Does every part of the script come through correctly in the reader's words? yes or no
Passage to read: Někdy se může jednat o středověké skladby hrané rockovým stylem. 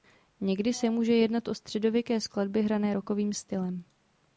yes